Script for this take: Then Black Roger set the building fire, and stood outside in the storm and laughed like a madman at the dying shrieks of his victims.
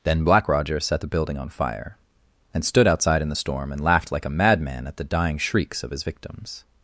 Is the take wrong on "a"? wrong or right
right